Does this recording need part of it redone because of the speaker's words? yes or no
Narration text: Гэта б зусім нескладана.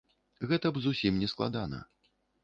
no